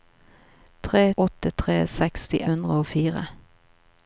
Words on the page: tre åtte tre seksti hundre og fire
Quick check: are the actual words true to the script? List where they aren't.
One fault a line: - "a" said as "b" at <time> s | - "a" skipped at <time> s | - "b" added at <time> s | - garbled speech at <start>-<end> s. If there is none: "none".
none